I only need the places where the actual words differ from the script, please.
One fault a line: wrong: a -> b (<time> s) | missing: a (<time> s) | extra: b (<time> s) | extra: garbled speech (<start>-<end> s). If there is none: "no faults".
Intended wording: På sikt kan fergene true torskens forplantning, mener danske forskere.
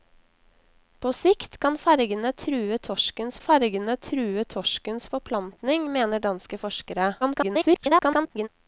extra: fergene true torskens (3.4 s)
extra: garbled speech (7.2-8.5 s)